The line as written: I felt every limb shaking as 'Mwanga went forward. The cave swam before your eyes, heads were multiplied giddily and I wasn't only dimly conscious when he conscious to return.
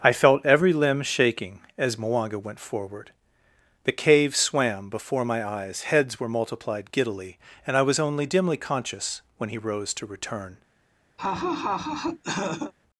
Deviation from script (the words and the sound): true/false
true